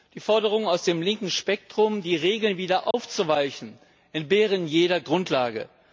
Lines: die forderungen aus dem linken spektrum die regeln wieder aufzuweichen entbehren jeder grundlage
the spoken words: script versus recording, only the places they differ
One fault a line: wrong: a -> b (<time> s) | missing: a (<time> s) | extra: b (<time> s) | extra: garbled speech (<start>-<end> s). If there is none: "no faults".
no faults